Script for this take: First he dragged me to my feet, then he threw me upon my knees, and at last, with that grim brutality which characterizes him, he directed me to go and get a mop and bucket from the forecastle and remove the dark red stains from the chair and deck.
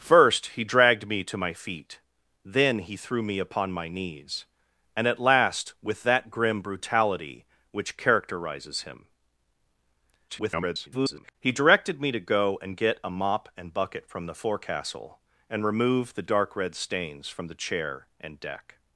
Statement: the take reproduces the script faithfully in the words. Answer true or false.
false